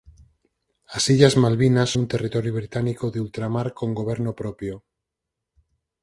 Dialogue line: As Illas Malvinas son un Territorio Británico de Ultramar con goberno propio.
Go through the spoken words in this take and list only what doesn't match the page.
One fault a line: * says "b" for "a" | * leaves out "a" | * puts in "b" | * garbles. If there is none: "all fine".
* leaves out "son"